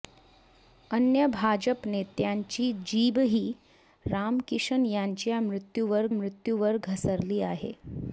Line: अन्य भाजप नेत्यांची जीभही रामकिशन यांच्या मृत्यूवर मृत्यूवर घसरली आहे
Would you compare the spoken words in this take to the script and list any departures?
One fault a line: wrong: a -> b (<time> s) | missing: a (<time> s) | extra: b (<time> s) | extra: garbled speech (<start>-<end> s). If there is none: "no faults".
no faults